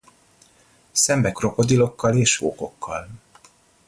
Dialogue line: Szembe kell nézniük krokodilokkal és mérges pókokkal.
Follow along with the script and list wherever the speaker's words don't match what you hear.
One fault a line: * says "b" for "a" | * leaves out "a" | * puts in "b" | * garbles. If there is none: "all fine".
* leaves out "kell nézniük"
* leaves out "mérges"